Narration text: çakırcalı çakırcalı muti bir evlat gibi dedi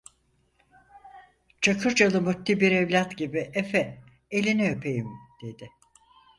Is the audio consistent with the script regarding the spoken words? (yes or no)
no